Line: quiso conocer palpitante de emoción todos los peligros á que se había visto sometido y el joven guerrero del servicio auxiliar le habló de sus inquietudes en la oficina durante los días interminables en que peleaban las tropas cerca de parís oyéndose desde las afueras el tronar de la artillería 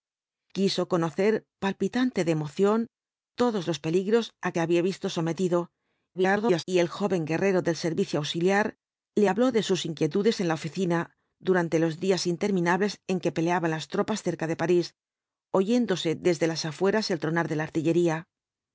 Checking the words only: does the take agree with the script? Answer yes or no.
no